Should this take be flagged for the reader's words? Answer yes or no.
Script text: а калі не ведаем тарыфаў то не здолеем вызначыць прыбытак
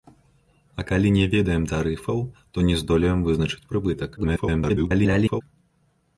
yes